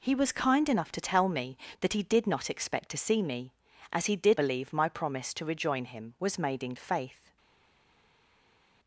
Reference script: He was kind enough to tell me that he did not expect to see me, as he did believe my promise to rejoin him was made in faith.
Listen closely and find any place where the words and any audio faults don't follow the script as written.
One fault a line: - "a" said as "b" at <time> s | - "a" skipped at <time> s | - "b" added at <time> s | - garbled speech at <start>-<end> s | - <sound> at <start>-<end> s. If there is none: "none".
none